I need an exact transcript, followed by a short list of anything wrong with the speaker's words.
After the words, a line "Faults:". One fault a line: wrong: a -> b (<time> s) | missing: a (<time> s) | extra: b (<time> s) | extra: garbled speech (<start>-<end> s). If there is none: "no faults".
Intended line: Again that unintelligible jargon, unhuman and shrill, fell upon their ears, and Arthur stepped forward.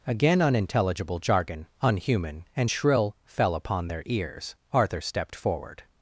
Again unintelligible jargon, unhuman and shrill, fell upon their ears, Arthur stepped forward.
Faults:
missing: that (0.4 s)
missing: and (4.5 s)